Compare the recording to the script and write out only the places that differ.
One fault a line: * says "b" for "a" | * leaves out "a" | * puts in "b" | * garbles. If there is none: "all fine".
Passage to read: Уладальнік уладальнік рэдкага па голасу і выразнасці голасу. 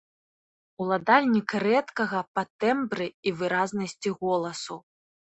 * leaves out "уладальнік"
* says "тэмбры" for "голасу"